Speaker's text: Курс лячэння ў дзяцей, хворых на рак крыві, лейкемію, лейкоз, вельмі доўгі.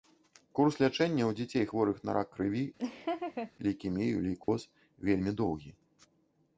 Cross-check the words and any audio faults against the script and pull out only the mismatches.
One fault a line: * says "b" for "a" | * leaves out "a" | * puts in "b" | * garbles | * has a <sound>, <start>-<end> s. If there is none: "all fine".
* has a laugh, 2.8-3.5 s
* has a dropout, 4.4-4.5 s